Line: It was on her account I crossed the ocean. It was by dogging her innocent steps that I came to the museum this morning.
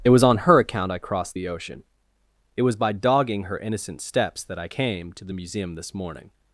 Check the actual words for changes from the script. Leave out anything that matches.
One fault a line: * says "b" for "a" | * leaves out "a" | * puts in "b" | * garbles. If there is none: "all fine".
all fine